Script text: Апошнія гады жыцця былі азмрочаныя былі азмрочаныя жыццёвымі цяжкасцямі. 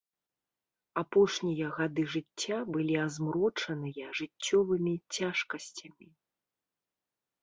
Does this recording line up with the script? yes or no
no